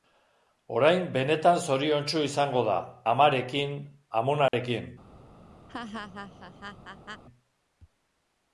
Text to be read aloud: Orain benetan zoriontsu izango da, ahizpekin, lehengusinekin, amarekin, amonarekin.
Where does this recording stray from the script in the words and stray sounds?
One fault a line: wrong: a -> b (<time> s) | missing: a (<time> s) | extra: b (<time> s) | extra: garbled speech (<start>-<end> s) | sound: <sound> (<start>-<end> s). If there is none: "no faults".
missing: ahizpekin lehengusinekin (2.8 s)
sound: dropout (4.5-4.5 s)
sound: laugh (5.7-7.2 s)